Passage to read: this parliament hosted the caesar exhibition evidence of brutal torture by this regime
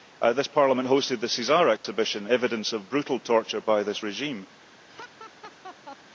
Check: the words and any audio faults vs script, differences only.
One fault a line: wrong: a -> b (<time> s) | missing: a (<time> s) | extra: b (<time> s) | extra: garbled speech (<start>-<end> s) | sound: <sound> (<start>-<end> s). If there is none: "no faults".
sound: dropout (1.8-1.8 s)
sound: laugh (4.9-6.0 s)